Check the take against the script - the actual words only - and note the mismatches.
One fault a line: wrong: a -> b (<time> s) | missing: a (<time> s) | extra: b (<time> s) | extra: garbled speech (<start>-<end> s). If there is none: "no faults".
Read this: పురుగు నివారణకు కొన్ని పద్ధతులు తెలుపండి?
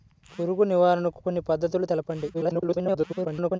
extra: garbled speech (2.3-3.6 s)